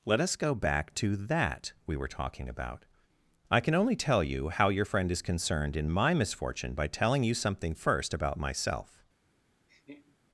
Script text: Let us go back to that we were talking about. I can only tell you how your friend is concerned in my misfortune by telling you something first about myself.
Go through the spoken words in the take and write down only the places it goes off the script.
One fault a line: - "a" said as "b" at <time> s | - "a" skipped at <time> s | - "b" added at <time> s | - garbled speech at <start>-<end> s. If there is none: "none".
none